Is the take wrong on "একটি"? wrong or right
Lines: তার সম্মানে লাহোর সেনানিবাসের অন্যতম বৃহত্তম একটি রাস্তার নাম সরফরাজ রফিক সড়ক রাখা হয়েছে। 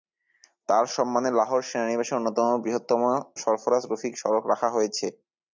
wrong